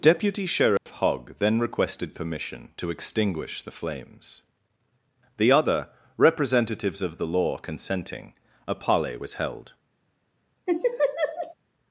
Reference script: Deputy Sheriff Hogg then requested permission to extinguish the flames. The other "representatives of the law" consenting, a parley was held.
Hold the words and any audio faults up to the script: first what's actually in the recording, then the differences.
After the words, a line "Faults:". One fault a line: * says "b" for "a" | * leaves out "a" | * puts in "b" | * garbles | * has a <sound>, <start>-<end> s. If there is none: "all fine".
Deputy Sheriff Hogg then requested permission to extinguish the flames. The other "representatives of the law" consenting, a parley was held.
Faults:
* has a dropout, 0.8-0.9 s
* has a laugh, 10.7-11.5 s